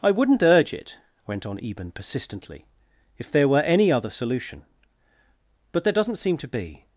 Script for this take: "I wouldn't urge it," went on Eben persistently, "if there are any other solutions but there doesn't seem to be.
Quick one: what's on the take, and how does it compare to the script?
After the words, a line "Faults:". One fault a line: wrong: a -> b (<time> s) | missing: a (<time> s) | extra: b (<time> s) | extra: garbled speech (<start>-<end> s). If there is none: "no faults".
"I wouldn't urge it," went on Eben persistently, "if there were any other solution but there doesn't seem to be.
Faults:
wrong: are -> were (3.5 s)
wrong: solutions -> solution (4.1 s)